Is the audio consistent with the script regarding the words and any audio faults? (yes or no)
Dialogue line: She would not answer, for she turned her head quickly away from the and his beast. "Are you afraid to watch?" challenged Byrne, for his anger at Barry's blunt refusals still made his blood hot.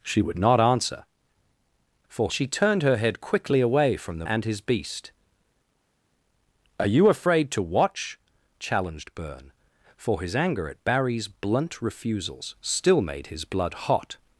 yes